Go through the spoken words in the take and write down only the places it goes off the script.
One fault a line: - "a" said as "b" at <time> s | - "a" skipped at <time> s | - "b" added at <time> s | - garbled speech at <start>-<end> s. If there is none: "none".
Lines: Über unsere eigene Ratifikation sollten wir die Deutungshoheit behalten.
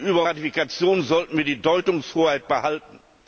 - "unsere eigene" skipped at 0.2 s